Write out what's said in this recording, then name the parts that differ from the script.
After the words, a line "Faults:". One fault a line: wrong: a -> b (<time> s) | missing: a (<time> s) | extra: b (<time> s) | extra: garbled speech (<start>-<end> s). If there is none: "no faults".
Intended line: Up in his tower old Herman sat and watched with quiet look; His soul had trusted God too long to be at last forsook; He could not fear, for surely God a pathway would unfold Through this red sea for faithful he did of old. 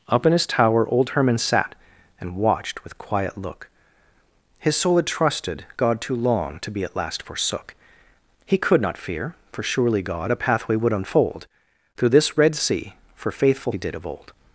Up in his tower old Herman sat and watched with quiet look; His soul had trusted God too long to be at last forsook; He could not fear, for surely God a pathway would unfold Through this red sea for faithful he did of old.
Faults:
no faults